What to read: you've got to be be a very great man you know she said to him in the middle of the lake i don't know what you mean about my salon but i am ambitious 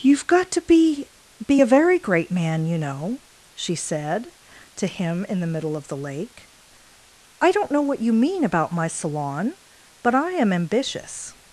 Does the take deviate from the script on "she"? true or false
false